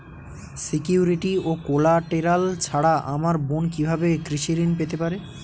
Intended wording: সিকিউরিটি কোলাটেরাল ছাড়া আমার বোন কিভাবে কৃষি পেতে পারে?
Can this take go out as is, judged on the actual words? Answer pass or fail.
fail